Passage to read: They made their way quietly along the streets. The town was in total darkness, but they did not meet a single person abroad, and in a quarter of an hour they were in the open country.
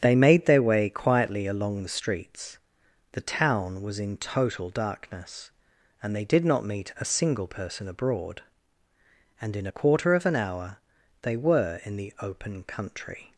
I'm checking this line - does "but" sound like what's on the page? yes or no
no